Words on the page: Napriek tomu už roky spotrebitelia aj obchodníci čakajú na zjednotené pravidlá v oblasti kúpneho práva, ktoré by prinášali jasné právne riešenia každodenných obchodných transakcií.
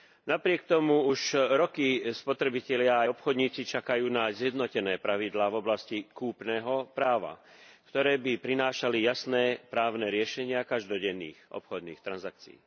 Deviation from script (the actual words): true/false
false